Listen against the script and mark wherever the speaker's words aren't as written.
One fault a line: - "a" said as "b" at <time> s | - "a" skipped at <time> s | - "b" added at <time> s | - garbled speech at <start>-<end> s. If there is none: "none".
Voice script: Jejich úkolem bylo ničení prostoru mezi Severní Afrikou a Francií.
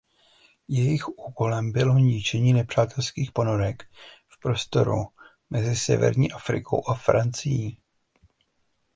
- "nepřátelských ponorek v" added at 2.5 s